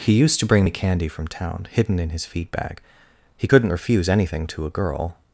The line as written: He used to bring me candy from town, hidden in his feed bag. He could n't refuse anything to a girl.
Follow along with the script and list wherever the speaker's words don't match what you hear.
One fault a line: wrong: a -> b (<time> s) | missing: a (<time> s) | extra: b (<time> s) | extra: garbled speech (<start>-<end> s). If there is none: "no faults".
no faults